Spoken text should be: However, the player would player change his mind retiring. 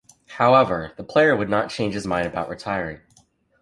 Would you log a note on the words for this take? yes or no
yes